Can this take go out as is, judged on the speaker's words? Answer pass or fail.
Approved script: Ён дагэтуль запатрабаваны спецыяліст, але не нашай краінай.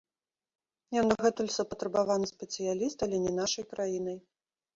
pass